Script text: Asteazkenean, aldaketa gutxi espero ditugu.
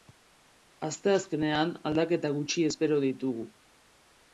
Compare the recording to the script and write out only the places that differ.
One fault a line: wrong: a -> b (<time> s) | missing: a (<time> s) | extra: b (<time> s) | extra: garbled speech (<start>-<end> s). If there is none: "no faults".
no faults